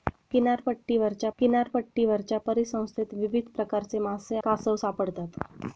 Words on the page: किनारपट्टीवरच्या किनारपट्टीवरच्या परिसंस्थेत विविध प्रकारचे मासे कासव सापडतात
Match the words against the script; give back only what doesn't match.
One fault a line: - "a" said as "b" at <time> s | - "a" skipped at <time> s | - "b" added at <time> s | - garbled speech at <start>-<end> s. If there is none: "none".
none